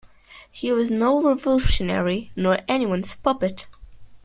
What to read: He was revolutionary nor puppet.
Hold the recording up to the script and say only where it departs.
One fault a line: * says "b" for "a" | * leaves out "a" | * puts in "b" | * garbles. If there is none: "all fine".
* puts in "no"
* puts in "anyone's"